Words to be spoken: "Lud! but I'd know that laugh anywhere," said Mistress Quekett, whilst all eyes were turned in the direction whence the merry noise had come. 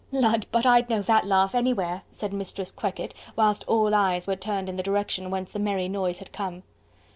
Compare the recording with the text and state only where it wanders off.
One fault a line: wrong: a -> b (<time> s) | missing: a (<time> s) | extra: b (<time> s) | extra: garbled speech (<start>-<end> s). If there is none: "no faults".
no faults